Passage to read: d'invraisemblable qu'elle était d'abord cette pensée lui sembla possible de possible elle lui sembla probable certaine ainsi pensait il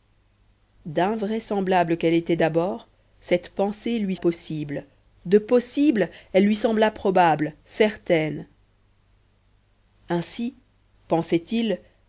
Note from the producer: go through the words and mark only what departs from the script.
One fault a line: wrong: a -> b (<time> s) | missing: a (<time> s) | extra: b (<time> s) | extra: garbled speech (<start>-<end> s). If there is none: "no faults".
missing: sembla (4.2 s)